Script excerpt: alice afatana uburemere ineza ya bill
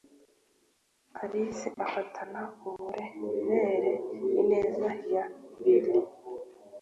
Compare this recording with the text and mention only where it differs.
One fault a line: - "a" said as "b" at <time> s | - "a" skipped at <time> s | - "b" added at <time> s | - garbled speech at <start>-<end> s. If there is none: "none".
none